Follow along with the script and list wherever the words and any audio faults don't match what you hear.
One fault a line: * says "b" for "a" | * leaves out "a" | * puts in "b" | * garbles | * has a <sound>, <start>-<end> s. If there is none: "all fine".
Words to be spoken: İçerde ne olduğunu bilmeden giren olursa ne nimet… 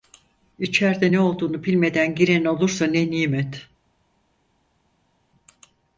all fine